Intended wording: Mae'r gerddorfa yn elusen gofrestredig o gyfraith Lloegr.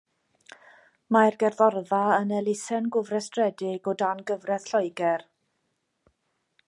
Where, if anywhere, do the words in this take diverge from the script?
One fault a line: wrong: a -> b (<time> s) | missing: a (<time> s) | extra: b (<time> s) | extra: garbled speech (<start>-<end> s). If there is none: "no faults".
extra: dan (4.0 s)